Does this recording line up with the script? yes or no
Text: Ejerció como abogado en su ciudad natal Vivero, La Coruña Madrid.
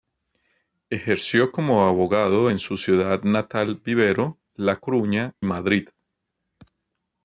yes